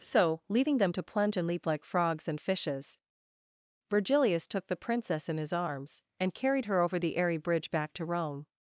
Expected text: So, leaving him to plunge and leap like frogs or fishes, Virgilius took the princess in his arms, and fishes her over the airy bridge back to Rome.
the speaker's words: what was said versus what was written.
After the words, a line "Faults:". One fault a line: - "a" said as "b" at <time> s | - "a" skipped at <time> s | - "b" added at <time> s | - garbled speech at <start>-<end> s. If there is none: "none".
So, leaving them to plunge and leap like frogs and fishes, Virgilius took the princess in his arms, and carried her over the airy bridge back to Rome.
Faults:
- "him" said as "them" at 0.8 s
- "or" said as "and" at 2.3 s
- "fishes" said as "carried" at 6.3 s